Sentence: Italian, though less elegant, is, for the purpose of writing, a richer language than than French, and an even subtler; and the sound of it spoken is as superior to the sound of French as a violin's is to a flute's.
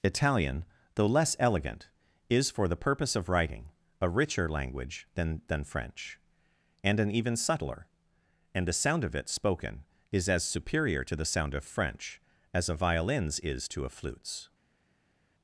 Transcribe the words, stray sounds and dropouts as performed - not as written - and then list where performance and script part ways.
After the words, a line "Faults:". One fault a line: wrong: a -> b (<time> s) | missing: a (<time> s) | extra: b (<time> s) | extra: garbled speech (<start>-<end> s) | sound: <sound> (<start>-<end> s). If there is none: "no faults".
Italian, though less elegant, is, for the purpose of writing, a richer language than than French, and an even subtler; and the sound of it spoken is as superior to the sound of French as a violin's is to a flute's.
Faults:
no faults